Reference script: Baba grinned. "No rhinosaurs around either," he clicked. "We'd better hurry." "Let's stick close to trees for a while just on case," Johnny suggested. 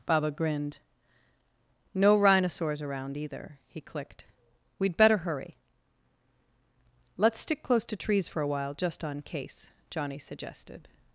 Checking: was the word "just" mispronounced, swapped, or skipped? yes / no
no